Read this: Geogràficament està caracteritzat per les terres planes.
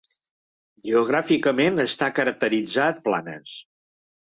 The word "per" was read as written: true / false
false